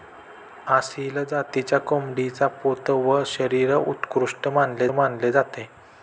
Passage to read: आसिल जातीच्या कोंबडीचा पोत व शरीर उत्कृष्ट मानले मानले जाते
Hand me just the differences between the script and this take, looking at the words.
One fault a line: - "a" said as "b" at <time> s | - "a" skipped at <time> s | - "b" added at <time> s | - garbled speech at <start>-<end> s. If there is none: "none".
none